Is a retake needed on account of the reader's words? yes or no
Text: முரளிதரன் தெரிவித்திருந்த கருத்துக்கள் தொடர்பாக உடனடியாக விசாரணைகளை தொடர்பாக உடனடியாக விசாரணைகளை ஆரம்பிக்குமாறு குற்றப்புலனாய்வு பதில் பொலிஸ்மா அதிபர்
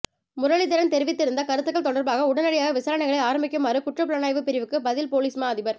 yes